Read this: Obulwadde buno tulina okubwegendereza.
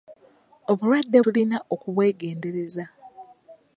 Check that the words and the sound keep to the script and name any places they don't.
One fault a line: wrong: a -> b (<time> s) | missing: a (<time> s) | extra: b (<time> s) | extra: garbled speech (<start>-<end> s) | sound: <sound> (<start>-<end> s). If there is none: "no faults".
missing: buno (1.2 s)